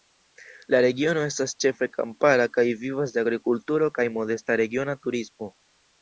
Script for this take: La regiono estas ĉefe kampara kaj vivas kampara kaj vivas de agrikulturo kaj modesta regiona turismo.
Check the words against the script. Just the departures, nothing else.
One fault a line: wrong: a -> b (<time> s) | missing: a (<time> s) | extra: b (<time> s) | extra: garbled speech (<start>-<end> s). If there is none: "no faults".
missing: kampara kaj vivas (3.1 s)